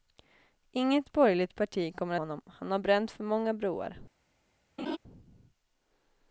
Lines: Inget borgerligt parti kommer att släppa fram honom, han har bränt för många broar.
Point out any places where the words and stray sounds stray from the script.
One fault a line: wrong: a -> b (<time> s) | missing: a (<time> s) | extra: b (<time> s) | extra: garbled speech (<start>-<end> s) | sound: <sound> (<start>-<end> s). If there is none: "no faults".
missing: att släppa fram (2.1 s)
sound: laugh (4.8-5.0 s)